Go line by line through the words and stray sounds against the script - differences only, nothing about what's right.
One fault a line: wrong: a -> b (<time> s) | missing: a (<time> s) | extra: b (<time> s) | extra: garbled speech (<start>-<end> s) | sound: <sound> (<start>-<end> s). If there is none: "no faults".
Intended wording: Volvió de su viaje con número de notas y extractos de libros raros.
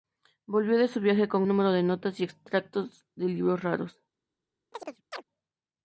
sound: chirp (4.7-5.2 s)